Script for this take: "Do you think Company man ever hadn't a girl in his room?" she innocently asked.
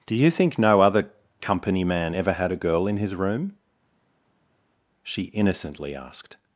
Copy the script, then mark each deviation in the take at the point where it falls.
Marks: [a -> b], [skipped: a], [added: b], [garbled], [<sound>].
"Do you think [added: no other] Company man ever [hadn't -> had] a girl in his room?" she innocently asked.